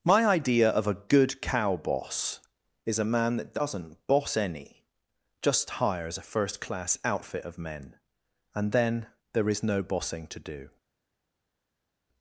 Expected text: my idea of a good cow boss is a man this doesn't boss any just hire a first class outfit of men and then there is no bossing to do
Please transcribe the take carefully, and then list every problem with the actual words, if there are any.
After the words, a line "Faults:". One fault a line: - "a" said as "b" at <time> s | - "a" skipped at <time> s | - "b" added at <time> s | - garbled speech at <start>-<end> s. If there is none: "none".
my idea of a good cow boss is a man that doesn't boss any just hires a first class outfit of men and then there is no bossing to do
Faults:
- "this" said as "that" at 3.4 s
- "hire" said as "hires" at 5.7 s